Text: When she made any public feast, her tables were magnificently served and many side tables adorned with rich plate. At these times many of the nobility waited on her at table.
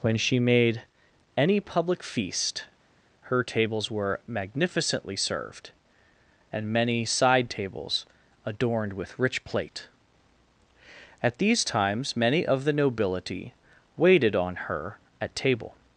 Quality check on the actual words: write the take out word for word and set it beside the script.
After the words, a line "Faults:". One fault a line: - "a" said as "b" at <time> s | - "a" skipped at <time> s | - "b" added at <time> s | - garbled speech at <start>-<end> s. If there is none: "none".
When she made any public feast, her tables were magnificently served and many side tables adorned with rich plate. At these times many of the nobility waited on her at table.
Faults:
none